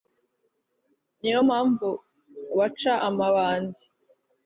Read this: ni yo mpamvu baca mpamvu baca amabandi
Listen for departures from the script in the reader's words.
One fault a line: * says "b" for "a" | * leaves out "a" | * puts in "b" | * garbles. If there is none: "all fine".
* leaves out "mpamvu baca"